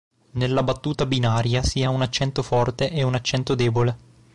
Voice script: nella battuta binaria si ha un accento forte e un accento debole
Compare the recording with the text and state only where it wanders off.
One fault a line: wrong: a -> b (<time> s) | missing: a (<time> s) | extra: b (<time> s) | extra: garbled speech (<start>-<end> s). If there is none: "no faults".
no faults